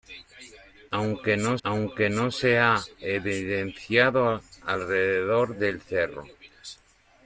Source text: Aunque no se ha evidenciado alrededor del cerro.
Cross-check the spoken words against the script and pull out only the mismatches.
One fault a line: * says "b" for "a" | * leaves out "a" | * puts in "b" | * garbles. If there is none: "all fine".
* puts in "aunque no"